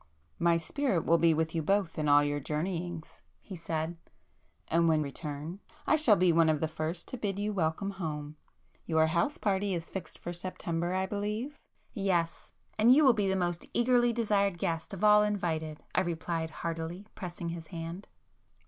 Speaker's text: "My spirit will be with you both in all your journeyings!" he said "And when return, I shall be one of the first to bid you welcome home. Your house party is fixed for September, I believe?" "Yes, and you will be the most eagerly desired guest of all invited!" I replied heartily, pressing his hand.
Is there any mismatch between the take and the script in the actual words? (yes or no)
no